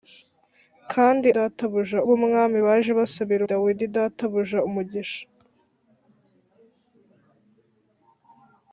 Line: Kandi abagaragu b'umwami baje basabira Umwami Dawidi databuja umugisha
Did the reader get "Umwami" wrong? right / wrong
wrong